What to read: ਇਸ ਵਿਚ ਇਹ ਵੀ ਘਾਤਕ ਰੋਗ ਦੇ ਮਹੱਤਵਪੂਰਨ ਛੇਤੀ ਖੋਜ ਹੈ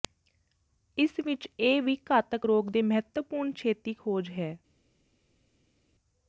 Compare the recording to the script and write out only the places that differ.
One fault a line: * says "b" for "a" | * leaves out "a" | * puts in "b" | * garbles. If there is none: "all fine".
all fine